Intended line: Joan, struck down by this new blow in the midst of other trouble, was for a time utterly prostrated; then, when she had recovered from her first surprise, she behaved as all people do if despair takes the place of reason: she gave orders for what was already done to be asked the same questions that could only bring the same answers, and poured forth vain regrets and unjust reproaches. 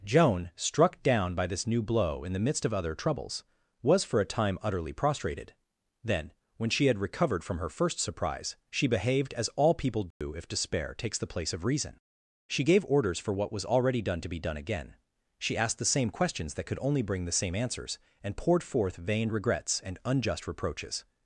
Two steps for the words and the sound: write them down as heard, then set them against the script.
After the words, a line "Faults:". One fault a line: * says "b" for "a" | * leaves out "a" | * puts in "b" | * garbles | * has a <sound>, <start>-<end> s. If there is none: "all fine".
Joan, struck down by this new blow in the midst of other troubles, was for a time utterly prostrated; then, when she had recovered from her first surprise, she behaved as all people do if despair takes the place of reason: she gave orders for what was already done to be done again, she asked the same questions that could only bring the same answers, and poured forth vain regrets and unjust reproaches.
Faults:
* says "troubles" for "trouble"
* has a dropout, 10.1-10.2 s
* puts in "done again she"